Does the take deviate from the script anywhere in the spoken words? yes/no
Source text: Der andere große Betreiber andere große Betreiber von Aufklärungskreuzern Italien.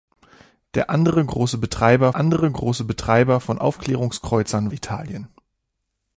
no